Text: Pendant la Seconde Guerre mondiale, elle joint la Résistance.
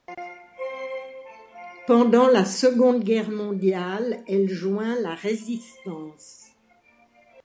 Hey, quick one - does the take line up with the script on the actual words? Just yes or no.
yes